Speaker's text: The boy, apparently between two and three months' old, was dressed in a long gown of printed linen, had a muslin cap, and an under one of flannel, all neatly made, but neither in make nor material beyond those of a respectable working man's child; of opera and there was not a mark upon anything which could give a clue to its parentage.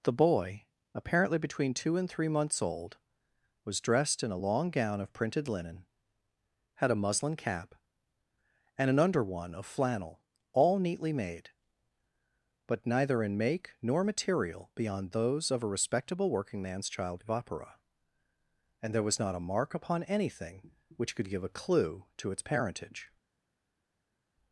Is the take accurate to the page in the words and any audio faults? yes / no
yes